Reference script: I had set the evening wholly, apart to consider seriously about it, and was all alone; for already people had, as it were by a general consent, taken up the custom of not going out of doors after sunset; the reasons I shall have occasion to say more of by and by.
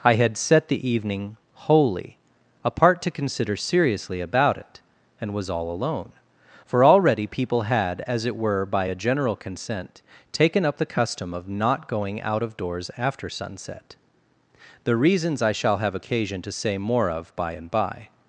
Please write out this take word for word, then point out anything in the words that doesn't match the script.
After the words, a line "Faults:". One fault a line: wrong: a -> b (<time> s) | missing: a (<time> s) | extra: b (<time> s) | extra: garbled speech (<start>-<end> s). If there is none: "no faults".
I had set the evening wholly, apart to consider seriously about it, and was all alone; for already people had, as it were by a general consent, taken up the custom of not going out of doors after sunset; the reasons I shall have occasion to say more of by and by.
Faults:
no faults